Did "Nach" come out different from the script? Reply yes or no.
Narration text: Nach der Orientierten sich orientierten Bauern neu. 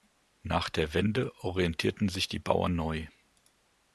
no